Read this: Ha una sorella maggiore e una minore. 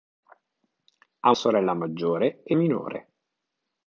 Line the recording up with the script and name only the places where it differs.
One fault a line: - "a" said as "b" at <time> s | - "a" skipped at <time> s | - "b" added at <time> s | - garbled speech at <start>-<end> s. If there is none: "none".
- "una" skipped at 1.3 s
- "una" skipped at 2.6 s